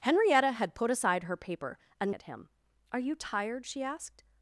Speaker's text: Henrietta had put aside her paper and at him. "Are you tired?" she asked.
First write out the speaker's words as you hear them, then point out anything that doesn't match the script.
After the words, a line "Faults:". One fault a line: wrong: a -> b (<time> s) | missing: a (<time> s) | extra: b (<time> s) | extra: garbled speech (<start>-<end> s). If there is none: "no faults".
Henrietta had put aside her paper and at him. "Are you tired?" she asked.
Faults:
no faults